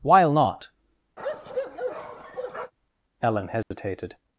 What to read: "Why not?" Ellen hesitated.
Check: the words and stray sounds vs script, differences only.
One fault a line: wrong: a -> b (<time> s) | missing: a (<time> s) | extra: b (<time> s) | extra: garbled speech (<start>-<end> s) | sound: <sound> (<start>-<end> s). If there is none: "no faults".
wrong: Why -> While (0.0 s)
sound: bark (1.2-2.7 s)
sound: dropout (3.6-3.7 s)